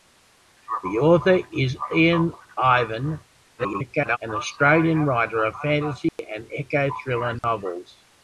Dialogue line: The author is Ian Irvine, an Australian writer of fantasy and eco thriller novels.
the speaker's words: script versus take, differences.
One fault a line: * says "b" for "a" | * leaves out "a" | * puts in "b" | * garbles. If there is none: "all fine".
* garbles